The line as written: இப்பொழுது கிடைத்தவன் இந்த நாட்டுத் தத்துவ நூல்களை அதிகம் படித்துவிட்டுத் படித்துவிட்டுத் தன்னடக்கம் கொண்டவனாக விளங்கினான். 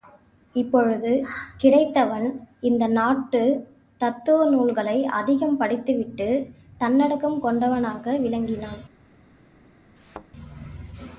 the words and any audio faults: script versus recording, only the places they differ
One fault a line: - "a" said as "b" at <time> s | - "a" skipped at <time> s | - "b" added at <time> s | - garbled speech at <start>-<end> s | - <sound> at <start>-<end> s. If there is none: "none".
- "படித்துவிட்டுத்" skipped at 6.5 s
- thud at 10.0-10.3 s